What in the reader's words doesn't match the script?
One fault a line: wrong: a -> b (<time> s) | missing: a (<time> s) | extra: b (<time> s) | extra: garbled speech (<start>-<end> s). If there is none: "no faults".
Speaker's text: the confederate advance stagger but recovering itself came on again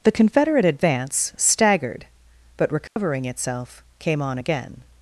wrong: stagger -> staggered (1.4 s)